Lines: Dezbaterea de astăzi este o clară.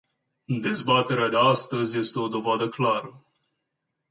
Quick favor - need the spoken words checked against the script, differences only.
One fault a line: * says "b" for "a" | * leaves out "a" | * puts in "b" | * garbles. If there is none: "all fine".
* puts in "dovadă"